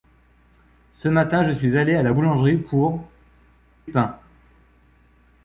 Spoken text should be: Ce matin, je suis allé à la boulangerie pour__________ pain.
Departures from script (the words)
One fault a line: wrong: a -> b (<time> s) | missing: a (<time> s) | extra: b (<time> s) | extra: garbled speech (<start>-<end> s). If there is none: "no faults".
no faults